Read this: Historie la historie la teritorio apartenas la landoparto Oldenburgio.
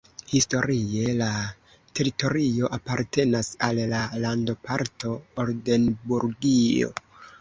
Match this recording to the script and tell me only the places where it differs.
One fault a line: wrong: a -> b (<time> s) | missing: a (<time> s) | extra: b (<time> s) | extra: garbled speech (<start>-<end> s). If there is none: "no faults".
missing: historie la (1.3 s)
extra: al (3.7 s)